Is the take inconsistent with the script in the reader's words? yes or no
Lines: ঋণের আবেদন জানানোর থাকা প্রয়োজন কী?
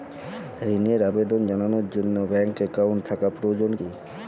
yes